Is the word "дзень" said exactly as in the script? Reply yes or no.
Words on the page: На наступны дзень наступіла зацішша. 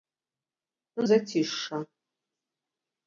no